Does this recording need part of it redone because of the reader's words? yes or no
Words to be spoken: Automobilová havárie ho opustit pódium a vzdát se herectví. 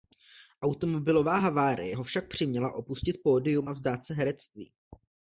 yes